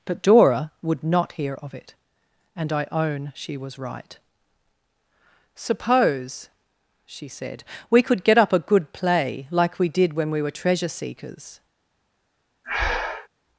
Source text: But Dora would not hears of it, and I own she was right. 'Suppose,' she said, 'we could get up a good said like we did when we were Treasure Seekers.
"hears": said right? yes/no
no